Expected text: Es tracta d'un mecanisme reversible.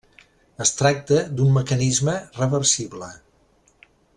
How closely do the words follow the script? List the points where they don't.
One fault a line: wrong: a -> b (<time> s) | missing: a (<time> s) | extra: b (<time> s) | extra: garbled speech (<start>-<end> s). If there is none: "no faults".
no faults